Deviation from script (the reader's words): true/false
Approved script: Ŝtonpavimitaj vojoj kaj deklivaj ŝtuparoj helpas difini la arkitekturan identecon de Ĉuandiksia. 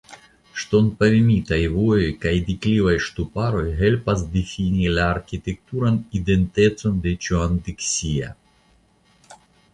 false